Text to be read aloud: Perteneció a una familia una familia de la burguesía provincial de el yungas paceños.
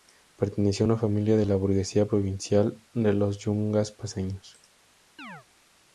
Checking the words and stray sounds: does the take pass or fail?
fail